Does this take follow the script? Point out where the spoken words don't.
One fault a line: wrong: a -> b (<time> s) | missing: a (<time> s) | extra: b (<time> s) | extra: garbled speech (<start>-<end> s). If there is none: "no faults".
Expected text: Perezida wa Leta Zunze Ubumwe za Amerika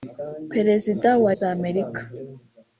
missing: Leta Zunze Ubumwe (1.3 s)